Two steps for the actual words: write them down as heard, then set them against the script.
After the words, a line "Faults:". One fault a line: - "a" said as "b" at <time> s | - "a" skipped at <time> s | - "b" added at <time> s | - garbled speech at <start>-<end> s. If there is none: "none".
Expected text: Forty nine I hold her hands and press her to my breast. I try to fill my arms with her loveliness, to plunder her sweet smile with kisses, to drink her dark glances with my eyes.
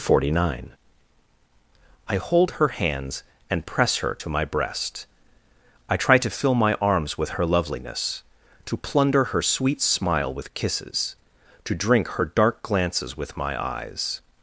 Forty nine I hold her hands and press her to my breast. I try to fill my arms with her loveliness, to plunder her sweet smile with kisses, to drink her dark glances with my eyes.
Faults:
none